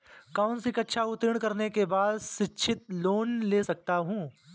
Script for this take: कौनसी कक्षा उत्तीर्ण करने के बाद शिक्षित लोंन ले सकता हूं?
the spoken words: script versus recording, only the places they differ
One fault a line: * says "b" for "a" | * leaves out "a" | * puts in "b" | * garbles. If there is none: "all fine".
all fine